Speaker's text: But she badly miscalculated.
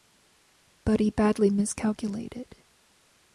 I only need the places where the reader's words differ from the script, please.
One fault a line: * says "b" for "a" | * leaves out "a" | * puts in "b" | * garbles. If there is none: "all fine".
* says "he" for "she"